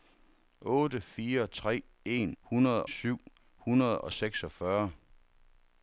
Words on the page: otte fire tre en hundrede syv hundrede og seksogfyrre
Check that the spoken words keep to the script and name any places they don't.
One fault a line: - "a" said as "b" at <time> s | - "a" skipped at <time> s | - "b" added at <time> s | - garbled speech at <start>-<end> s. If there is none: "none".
none